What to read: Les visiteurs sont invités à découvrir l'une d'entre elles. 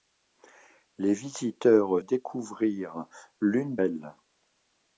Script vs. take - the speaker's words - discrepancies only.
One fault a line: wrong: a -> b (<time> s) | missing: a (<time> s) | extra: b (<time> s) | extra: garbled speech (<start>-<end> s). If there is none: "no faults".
missing: sont invités à (2.0 s)
missing: d'entre (3.8 s)